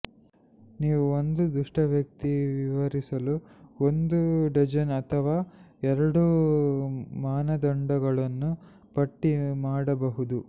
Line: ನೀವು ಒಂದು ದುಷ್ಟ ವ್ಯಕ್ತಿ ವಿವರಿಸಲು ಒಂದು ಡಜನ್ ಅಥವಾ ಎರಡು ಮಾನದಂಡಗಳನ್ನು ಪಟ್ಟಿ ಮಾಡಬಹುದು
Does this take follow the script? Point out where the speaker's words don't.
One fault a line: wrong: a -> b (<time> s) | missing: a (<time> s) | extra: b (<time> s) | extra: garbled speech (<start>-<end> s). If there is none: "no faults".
no faults